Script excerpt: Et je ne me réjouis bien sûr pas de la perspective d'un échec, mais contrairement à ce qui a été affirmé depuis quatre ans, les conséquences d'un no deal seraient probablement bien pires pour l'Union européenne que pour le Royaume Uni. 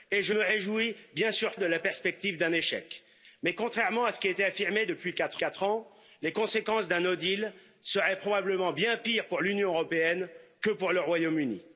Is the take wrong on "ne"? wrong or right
wrong